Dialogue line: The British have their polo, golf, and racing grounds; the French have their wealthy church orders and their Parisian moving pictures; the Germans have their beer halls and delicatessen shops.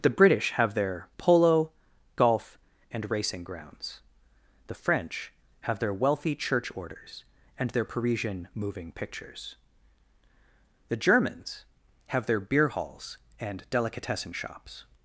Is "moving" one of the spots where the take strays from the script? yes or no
no